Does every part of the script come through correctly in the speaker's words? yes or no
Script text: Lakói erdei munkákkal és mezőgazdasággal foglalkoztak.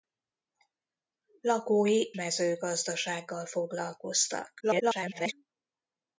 no